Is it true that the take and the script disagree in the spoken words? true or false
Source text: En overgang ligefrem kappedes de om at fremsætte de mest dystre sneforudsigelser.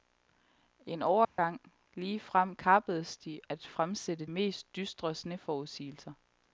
true